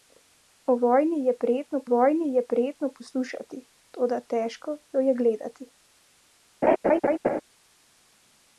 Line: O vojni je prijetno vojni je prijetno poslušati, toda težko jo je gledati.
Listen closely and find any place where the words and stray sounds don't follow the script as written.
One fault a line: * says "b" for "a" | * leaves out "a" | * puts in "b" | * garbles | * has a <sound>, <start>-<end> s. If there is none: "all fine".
* has a laugh, 6.6-7.4 s